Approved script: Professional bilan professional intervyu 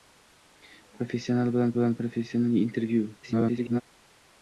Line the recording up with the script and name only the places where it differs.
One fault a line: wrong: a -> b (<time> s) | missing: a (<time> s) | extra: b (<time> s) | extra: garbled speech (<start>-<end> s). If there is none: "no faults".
extra: bilan (1.8 s)
extra: garbled speech (3.2-3.8 s)